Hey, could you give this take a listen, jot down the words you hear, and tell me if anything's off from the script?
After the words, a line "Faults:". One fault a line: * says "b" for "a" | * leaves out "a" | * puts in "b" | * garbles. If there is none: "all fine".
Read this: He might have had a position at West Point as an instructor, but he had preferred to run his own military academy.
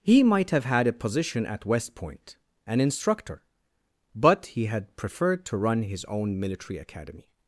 He might have had a position at West Point an instructor, but he had preferred to run his own military academy.
Faults:
* leaves out "as"